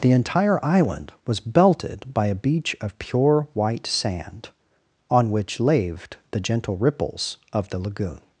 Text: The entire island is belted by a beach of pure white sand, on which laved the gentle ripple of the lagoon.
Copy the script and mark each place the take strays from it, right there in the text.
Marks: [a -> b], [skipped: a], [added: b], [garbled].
The entire island [is -> was] belted by a beach of pure white sand, on which laved the gentle [ripple -> ripples] of the lagoon.